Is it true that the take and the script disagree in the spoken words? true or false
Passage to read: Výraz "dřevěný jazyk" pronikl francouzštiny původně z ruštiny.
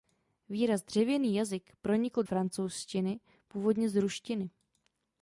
false